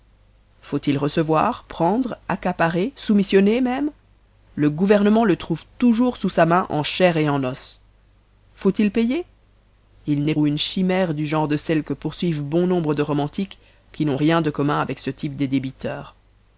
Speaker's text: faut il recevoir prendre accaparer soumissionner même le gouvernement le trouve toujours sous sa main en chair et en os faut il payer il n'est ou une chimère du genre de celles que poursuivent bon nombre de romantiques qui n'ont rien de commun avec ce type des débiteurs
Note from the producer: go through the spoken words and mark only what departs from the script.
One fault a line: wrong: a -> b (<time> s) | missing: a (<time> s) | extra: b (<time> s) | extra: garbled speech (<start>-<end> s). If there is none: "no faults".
no faults